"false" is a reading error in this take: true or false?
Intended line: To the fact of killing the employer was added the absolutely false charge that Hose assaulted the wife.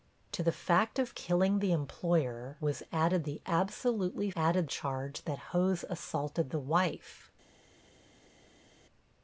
true